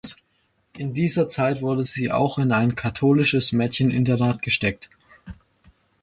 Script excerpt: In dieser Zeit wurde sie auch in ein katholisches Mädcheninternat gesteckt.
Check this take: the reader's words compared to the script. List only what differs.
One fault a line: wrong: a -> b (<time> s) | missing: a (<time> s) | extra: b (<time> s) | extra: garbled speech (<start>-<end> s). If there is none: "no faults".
no faults